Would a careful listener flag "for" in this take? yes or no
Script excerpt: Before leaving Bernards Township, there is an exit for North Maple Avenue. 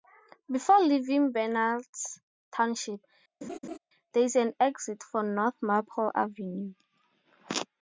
no